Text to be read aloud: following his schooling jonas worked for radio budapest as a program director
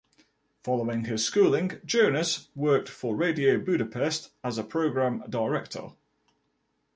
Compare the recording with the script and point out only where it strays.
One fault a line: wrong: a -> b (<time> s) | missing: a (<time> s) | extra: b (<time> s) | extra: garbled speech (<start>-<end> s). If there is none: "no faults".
no faults